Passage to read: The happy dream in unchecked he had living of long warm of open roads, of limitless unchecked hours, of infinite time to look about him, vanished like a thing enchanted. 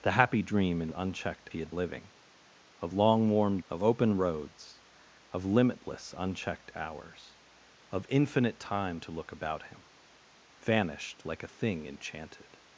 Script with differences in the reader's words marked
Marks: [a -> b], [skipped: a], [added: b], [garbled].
The happy dream in unchecked he had living of long warm of open roads, of limitless unchecked hours, of infinite time to look about him, vanished like a thing enchanted.